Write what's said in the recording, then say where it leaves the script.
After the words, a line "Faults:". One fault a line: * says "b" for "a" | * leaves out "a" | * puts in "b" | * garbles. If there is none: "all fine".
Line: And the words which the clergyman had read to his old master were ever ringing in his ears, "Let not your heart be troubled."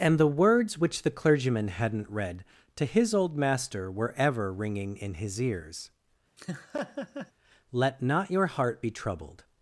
And the words which the clergyman hadn't read to his old master were ever ringing in his ears, "Let not your heart be troubled."
Faults:
* says "hadn't" for "had"